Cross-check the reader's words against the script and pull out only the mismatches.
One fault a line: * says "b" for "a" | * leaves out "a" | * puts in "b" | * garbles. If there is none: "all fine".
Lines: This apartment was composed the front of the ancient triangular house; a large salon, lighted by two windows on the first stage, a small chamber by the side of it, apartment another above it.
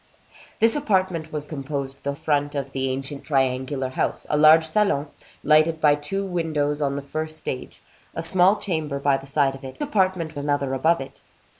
all fine